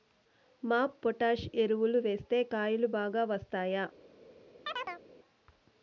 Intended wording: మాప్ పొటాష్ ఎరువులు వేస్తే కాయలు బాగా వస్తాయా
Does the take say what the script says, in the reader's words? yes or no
yes